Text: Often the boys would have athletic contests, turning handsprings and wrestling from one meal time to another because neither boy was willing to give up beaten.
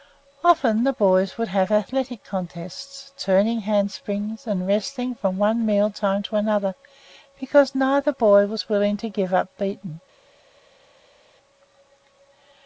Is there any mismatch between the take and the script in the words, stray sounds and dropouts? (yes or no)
no